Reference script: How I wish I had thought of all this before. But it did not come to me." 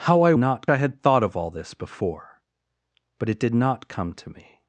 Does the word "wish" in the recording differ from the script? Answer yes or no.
yes